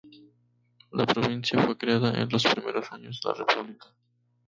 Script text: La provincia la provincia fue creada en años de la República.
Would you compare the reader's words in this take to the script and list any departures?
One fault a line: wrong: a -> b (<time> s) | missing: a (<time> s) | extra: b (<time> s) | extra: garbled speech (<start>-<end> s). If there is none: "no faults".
missing: la provincia (1.6 s)
extra: los primeros (2.3 s)